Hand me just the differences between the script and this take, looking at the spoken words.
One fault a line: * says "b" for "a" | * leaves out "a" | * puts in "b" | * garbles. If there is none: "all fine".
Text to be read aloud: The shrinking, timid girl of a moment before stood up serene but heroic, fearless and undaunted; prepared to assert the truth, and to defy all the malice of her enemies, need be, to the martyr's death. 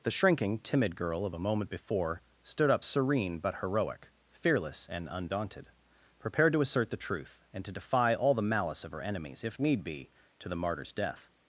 * puts in "if"